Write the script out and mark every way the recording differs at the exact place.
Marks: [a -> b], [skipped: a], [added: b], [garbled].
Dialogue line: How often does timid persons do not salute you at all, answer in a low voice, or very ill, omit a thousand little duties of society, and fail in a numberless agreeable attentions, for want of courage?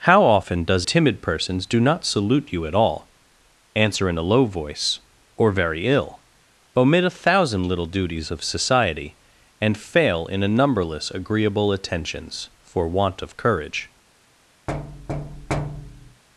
How often does timid persons do not salute you at all, answer in a low voice, or very ill, omit a thousand little duties of society, and fail in a numberless agreeable attentions, for want of courage?